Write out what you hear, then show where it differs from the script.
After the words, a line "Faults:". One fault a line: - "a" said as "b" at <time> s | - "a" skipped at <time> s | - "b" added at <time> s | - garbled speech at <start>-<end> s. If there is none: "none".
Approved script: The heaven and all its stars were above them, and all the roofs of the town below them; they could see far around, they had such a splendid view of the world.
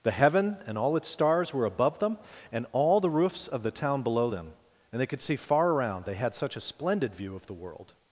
The heaven and all its stars were above them, and all the roofs of the town below them; and they could see far around, they had such a splendid view of the world.
Faults:
- "and" added at 4.9 s